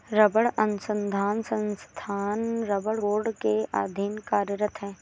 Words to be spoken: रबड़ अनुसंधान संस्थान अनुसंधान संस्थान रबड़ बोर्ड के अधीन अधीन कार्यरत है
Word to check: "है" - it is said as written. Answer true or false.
true